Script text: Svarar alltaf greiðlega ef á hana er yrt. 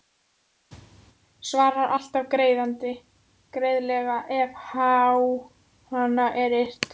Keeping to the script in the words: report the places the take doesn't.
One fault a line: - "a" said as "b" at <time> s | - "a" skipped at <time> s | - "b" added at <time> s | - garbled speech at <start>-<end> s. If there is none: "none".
none